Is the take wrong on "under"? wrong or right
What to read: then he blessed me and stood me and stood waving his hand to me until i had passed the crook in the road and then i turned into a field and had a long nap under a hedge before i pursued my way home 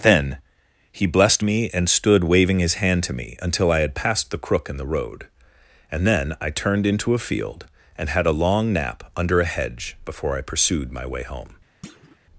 right